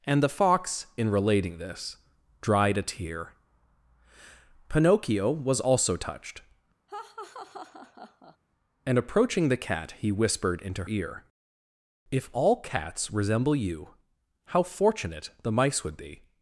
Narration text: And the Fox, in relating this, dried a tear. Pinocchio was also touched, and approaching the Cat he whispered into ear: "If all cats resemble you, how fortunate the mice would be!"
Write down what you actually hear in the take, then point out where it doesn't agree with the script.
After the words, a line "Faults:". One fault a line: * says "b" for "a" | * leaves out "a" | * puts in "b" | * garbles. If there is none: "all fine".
And the Fox, in relating this, dried a tear. Pinocchio was also touched, and approaching the Cat he whispered into ear: "If all cats resemble you, how fortunate the mice would be!"
Faults:
all fine